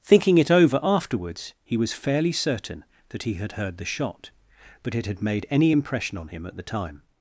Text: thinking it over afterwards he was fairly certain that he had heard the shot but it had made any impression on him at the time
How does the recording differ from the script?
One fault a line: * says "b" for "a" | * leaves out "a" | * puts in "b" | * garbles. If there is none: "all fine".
all fine